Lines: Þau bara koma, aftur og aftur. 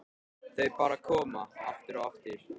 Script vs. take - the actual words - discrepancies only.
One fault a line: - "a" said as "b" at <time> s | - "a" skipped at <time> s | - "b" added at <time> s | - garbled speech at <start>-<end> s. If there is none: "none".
none